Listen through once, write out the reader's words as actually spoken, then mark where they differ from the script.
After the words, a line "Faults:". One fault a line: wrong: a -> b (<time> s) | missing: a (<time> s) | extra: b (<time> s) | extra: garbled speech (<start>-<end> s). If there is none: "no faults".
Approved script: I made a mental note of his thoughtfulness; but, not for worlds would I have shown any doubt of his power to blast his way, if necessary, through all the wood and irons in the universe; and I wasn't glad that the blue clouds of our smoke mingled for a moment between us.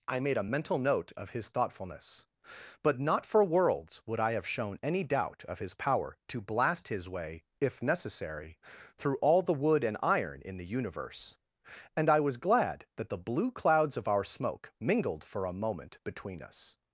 I made a mental note of his thoughtfulness; but, not for worlds would I have shown any doubt of his power to blast his way, if necessary, through all the wood and iron in the universe; and I was glad that the blue clouds of our smoke mingled for a moment between us.
Faults:
wrong: irons -> iron (10.0 s)
wrong: wasn't -> was (12.2 s)